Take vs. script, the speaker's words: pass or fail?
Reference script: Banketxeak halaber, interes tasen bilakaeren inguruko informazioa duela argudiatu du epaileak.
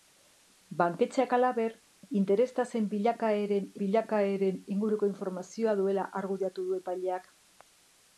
fail